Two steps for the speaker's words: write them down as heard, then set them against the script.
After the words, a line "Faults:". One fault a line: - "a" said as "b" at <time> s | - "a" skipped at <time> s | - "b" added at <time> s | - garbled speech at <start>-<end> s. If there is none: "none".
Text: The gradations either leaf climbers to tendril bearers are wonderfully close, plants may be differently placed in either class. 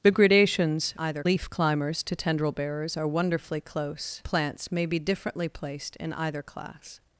The gradations either leaf climbers to tendril bearers are wonderfully close, plants may be differently placed in either class.
Faults:
none